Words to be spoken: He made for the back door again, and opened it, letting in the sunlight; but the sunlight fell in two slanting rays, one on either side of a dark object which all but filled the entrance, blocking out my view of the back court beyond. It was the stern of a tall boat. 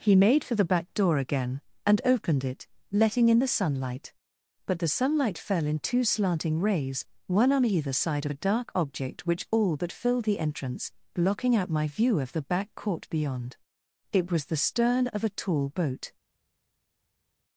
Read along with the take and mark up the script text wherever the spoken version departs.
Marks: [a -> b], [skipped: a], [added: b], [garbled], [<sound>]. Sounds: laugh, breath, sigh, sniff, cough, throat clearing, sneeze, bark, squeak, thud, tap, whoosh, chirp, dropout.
He made for the back door again, and opened it, letting in the sunlight; but the sunlight fell in two slanting rays, one on either side of a dark object which all but filled the entrance, blocking out my view of the back court beyond. It was the stern of a tall boat.